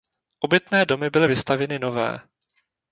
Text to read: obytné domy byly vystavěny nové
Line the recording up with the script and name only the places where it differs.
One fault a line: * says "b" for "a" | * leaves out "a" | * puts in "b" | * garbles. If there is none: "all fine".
all fine